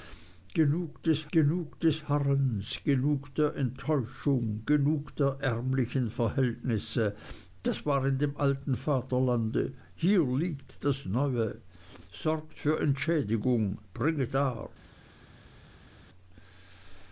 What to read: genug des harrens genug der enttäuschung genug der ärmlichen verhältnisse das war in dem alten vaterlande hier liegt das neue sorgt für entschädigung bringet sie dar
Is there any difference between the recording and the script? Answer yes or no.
yes